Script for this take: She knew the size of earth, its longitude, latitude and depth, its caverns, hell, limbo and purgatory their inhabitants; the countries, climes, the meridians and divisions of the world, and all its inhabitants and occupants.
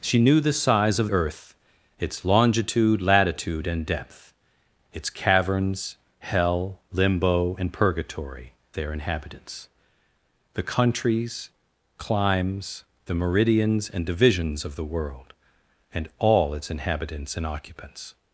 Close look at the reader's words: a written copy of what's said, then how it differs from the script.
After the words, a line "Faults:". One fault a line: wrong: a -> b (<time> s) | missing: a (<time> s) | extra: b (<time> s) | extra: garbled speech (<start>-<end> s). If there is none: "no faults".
She knew the size of earth, its longitude, latitude and depth, its caverns, hell, limbo and purgatory their inhabitants; the countries, climes, the meridians and divisions of the world, and all its inhabitants and occupants.
Faults:
no faults